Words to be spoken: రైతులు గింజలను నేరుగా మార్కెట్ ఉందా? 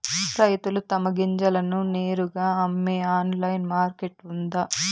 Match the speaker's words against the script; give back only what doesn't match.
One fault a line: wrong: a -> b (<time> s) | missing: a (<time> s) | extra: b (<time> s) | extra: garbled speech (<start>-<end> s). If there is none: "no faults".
extra: తమ (0.9 s)
extra: అమ్మే ఆన్లైన్ (2.6 s)